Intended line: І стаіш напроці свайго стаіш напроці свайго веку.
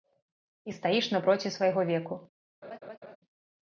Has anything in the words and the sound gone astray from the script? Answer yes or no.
yes